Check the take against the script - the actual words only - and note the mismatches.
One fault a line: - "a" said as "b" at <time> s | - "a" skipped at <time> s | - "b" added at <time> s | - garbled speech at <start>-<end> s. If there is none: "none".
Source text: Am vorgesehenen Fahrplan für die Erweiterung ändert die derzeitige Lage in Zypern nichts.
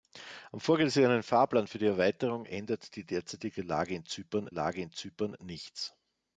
- "Lage in Zypern" added at 4.5 s